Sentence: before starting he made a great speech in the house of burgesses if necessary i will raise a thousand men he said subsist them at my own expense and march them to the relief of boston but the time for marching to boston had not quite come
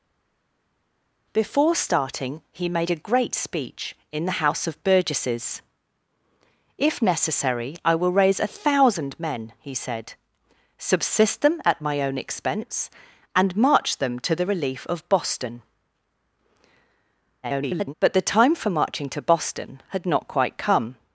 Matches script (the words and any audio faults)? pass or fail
fail